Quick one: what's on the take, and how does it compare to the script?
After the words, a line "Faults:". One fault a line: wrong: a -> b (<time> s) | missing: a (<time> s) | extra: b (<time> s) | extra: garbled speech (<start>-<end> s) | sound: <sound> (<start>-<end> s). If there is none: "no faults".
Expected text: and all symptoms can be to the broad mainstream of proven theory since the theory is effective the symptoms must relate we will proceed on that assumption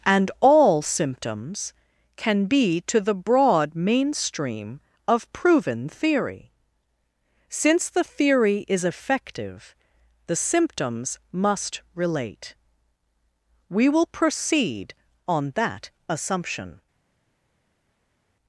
and all symptoms can be to the broad mainstream of proven theory since the theory is effective the symptoms must relate we will proceed on that assumption
Faults:
no faults